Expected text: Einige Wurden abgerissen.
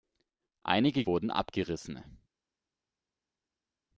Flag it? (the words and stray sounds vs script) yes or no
no